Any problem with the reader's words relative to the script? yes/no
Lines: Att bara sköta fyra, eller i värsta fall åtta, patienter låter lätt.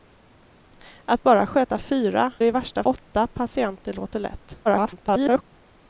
yes